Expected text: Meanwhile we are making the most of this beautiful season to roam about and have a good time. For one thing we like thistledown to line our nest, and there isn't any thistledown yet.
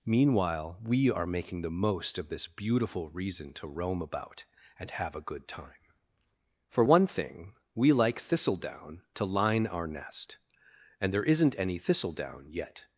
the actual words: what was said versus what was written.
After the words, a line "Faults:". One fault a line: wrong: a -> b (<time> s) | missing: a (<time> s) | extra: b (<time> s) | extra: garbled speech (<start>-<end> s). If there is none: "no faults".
Meanwhile we are making the most of this beautiful reason to roam about and have a good time. For one thing we like thistledown to line our nest, and there isn't any thistledown yet.
Faults:
wrong: season -> reason (3.1 s)